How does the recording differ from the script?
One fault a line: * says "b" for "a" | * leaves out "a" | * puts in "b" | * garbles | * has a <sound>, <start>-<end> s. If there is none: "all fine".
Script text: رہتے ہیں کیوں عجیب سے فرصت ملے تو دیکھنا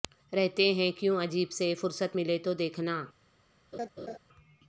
* has a laugh, 3.7-4.2 s